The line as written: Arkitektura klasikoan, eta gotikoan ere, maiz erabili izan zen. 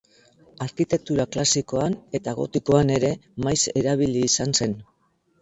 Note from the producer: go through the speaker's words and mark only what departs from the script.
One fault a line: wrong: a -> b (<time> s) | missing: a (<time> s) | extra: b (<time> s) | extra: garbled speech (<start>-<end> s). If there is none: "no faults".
no faults